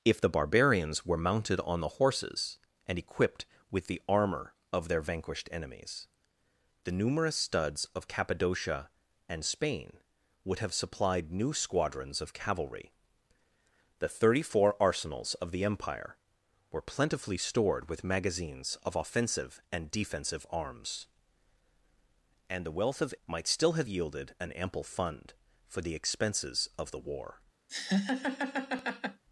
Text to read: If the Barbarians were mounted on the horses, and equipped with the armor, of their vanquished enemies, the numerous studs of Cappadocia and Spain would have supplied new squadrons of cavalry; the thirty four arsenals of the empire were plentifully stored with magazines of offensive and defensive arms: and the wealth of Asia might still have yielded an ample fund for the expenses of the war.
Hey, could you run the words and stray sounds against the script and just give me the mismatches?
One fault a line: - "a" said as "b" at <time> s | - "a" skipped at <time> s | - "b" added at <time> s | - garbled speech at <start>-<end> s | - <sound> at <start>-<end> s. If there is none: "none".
- "Asia" skipped at 23.1 s
- laugh at 27.7-29.2 s